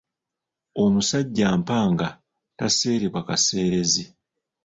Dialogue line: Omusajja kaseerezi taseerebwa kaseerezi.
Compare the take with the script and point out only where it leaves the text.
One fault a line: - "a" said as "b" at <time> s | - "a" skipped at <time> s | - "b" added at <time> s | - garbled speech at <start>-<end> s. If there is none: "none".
- "kaseerezi" said as "mpanga" at 1.6 s